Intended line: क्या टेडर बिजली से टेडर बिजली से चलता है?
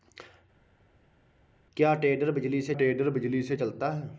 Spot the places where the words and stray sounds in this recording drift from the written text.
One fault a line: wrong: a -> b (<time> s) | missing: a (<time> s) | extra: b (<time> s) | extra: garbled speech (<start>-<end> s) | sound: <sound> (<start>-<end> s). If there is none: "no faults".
no faults